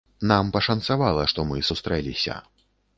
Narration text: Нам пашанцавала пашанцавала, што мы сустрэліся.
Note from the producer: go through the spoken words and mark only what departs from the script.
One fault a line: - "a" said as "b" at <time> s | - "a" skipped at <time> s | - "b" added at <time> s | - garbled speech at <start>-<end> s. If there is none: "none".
- "пашанцавала" skipped at 1.3 s